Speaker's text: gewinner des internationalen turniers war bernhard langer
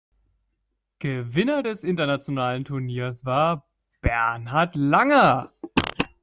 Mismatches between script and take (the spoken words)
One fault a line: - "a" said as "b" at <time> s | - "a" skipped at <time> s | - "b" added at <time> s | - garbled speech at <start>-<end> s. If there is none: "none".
none